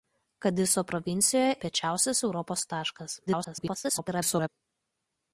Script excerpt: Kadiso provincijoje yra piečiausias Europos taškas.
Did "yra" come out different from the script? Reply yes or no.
yes